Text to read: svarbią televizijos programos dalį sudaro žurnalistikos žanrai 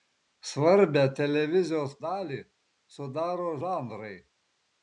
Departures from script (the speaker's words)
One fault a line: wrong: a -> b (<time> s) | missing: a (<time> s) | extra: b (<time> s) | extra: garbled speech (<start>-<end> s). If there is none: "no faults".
missing: programos (1.9 s)
missing: žurnalistikos (3.5 s)